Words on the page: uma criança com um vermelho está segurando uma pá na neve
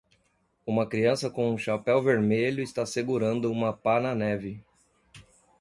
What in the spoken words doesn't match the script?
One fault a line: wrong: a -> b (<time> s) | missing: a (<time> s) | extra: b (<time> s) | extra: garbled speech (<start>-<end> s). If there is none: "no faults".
extra: chapéu (1.6 s)